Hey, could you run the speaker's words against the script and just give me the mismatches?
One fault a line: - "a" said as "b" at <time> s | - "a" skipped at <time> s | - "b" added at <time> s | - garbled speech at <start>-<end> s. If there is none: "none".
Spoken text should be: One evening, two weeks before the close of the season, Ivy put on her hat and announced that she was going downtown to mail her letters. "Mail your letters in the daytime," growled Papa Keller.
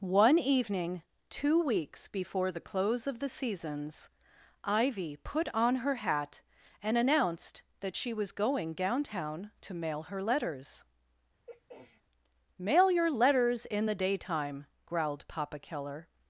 - "season" said as "seasons" at 3.3 s